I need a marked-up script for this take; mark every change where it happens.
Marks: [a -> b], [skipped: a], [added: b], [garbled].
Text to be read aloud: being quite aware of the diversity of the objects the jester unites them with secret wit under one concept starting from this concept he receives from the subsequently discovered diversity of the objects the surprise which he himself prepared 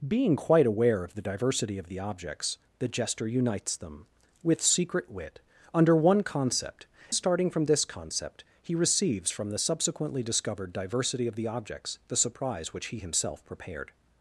being quite aware of the diversity of the objects the jester unites them with secret wit under one concept starting from this concept he receives from the subsequently discovered diversity of the objects the surprise which he himself prepared